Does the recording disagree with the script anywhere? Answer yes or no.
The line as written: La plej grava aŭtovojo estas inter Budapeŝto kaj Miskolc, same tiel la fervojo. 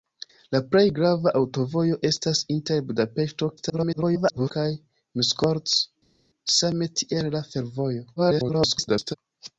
yes